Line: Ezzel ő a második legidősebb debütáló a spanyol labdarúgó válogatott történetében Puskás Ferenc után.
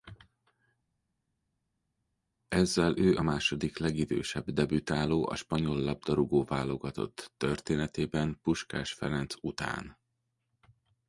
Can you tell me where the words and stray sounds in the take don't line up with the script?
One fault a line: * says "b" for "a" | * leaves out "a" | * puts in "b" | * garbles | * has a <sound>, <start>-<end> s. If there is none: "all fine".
all fine